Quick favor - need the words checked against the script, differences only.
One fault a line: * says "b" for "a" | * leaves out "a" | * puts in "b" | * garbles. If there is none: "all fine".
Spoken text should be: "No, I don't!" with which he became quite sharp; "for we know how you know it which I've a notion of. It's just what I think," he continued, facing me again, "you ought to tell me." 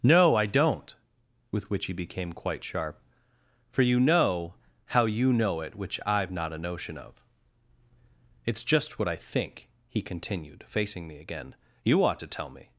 * says "you" for "we"
* puts in "not"